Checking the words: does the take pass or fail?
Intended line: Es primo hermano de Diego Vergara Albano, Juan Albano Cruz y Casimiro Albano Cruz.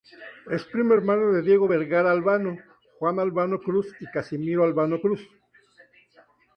pass